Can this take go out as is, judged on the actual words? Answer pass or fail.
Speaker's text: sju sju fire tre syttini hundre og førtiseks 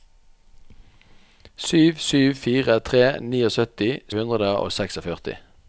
pass